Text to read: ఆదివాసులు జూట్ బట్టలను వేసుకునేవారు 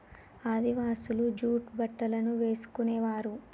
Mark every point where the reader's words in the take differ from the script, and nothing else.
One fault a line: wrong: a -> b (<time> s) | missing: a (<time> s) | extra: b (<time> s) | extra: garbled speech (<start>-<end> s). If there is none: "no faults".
no faults